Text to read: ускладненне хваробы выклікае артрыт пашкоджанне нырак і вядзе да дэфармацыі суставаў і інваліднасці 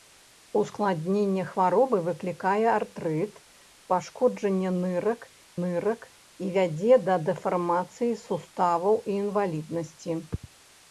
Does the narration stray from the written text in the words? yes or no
yes